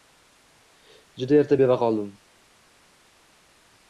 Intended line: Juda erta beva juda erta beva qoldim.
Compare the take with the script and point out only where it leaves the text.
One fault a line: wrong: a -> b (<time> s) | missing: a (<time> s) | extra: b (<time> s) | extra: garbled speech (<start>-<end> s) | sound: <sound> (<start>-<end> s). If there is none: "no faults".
missing: juda erta beva (1.8 s)